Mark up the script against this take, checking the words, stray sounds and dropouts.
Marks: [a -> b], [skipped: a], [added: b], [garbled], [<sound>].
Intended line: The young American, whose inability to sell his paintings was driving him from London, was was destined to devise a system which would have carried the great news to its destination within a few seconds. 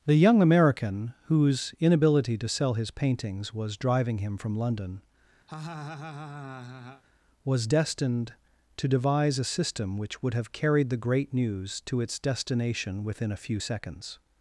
The young American, whose inability to sell his paintings was driving him from London, [laugh] was [skipped: was] destined to devise a system which would have carried the great news to its destination within a few seconds.